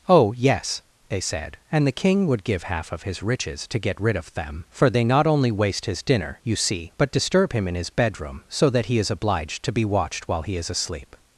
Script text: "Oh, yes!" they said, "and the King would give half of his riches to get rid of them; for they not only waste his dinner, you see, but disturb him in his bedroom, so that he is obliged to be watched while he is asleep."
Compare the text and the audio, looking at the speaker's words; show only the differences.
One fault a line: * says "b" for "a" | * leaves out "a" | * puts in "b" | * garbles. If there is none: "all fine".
all fine